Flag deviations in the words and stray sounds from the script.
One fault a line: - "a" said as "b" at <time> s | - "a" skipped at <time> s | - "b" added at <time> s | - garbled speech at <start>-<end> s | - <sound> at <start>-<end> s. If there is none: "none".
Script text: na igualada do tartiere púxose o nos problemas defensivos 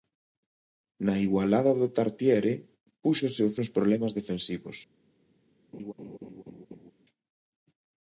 - laugh at 5.7-6.9 s